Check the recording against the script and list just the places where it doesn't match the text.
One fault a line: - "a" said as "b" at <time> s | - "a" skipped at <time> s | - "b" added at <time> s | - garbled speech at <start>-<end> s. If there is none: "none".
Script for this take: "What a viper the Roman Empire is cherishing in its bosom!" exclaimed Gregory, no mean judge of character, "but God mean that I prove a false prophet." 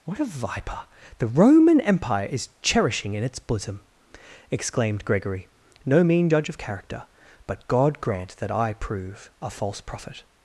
- "mean" said as "grant" at 8.0 s